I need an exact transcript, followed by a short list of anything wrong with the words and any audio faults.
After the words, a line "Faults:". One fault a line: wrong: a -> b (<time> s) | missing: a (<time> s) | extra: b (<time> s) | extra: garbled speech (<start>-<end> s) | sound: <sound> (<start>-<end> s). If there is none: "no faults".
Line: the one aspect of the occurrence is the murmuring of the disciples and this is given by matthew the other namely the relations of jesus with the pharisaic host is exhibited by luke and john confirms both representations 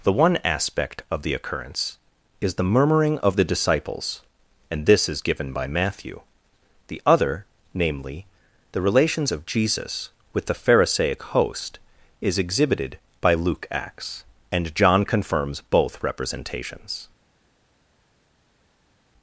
the one aspect of the occurrence is the murmuring of the disciples and this is given by matthew the other namely the relations of jesus with the pharisaic host is exhibited by luke acts and john confirms both representations
Faults:
extra: acts (13.7 s)